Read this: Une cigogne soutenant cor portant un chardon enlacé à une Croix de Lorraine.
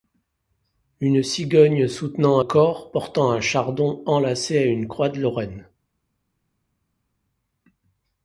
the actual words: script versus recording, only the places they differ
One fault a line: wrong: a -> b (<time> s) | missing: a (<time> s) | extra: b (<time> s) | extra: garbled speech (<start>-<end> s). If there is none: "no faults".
no faults